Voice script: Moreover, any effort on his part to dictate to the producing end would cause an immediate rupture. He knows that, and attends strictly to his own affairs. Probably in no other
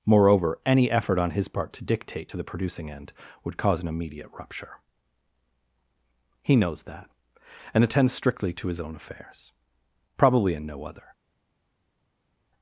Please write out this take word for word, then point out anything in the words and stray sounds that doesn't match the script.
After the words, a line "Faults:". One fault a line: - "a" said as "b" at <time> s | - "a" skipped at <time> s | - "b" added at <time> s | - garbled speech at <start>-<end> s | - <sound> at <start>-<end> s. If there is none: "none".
Moreover, any effort on his part to dictate to the producing end would cause an immediate rupture. He knows that, and attends strictly to his own affairs. Probably in no other
Faults:
none